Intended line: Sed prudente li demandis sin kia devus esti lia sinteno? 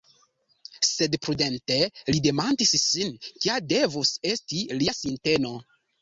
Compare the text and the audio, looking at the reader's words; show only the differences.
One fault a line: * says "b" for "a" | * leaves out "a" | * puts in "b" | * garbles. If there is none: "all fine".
all fine